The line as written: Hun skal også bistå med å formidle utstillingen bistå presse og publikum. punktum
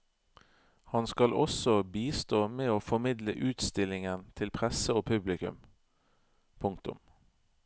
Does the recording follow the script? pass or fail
fail